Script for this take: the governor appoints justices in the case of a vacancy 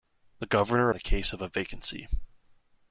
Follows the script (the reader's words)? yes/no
no